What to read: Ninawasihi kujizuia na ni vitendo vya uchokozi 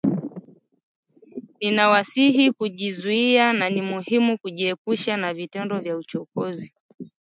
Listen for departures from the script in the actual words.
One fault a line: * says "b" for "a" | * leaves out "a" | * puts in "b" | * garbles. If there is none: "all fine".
* puts in "muhimu kujiepusha na"